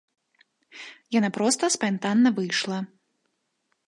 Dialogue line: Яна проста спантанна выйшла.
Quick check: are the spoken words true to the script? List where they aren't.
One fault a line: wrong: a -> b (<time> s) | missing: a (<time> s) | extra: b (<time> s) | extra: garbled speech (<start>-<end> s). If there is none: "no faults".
no faults